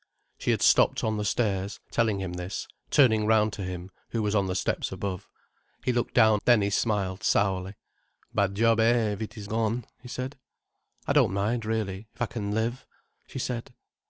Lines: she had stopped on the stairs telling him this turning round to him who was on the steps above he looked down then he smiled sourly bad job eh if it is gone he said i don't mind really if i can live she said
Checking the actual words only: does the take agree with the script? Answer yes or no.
yes